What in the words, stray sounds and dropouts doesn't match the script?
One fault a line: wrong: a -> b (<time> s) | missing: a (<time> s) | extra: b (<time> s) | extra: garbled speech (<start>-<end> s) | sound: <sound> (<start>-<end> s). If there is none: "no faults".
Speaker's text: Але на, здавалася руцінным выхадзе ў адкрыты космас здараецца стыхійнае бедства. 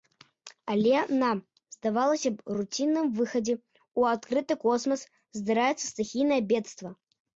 extra: б (2.4 s)